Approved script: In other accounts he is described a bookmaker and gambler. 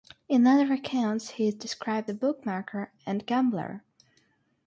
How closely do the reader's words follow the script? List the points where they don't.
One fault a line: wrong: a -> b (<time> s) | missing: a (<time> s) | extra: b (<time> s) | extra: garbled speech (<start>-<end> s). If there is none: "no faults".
no faults